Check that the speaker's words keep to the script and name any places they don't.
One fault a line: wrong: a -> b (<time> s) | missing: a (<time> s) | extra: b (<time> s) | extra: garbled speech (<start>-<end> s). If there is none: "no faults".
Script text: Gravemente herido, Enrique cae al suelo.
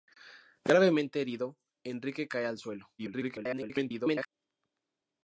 extra: garbled speech (3.0-4.3 s)